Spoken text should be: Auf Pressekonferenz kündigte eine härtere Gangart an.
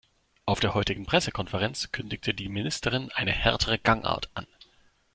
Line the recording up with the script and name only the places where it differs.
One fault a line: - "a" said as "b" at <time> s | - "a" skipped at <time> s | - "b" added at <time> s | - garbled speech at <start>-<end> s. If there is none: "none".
- "der heutigen" added at 0.6 s
- "die Ministerin" added at 2.3 s